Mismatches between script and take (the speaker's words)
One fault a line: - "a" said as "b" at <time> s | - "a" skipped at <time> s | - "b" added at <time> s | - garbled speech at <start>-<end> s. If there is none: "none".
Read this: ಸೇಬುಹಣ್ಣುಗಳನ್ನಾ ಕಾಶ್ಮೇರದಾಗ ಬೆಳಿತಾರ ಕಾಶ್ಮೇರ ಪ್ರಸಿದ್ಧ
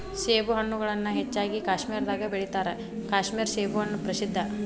- "ಹೆಚ್ಚಾಗಿ" added at 1.1 s
- "ಸೇಬುಹಣ್ಣು" added at 3.5 s